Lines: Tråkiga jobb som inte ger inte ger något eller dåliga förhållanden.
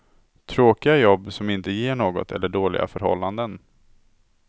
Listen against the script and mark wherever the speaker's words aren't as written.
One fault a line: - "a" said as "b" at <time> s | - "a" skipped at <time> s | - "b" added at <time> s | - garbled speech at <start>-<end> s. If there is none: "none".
- "inte ger" skipped at 1.9 s